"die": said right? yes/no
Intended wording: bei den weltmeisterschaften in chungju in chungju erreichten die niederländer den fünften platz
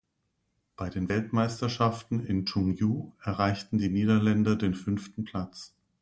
yes